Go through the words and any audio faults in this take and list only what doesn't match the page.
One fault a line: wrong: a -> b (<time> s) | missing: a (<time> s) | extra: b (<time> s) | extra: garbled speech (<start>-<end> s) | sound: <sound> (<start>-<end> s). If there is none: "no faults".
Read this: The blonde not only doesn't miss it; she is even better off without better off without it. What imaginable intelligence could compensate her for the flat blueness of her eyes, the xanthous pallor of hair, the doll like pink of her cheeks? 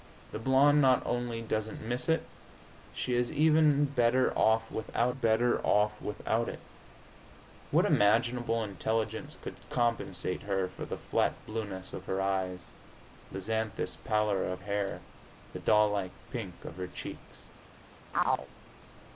sound: chirp (18.1-18.5 s)